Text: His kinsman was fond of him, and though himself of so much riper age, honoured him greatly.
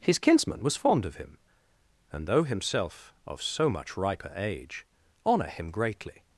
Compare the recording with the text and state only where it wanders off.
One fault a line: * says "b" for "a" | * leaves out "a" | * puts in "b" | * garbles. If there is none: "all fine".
* says "honour" for "honoured"